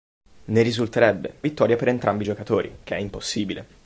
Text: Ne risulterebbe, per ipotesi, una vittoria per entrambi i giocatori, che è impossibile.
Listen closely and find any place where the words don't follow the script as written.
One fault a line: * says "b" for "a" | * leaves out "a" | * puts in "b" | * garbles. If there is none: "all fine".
* leaves out "per ipotesi una"